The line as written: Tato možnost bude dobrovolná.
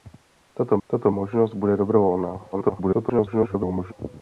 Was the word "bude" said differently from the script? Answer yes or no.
no